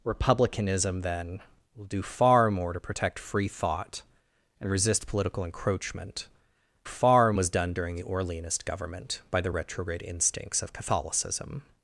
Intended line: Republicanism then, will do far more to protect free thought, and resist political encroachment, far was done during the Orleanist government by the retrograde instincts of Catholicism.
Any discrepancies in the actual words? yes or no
no